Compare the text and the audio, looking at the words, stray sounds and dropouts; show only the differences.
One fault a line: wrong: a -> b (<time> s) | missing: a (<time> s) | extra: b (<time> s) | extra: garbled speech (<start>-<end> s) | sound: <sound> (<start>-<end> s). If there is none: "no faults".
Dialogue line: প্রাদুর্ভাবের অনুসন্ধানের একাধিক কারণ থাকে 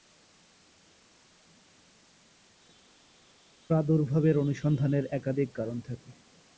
no faults